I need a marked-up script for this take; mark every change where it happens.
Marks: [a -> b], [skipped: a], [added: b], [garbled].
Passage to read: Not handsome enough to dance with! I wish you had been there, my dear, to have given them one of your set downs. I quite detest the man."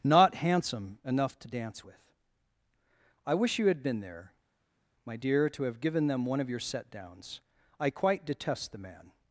Not handsome enough to dance with! I wish you had been there, my dear, to have given them one of your set downs. I quite detest the man."